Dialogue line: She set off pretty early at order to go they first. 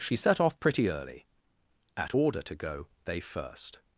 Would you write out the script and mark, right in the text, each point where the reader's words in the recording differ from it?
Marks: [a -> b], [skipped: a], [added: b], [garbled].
She set off pretty early at order to go they first.